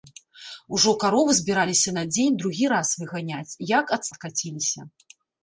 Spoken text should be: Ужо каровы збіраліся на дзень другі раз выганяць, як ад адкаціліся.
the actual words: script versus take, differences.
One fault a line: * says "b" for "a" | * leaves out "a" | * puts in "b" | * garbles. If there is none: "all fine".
all fine